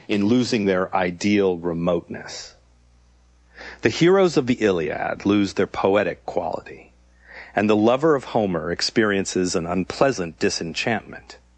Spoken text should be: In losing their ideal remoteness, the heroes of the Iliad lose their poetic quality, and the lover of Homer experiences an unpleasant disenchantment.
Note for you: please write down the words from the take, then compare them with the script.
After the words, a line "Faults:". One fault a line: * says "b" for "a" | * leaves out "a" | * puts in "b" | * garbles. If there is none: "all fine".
In losing their ideal remoteness, the heroes of the Iliad lose their poetic quality, and the lover of Homer experiences an unpleasant disenchantment.
Faults:
all fine